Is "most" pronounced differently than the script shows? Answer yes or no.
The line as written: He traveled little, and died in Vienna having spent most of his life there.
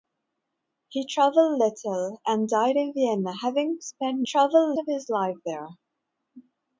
yes